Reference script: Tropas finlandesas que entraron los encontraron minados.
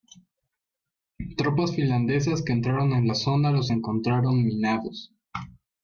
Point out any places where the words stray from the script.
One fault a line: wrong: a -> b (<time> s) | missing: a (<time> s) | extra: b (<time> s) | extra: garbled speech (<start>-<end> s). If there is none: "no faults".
extra: en la zona (2.9 s)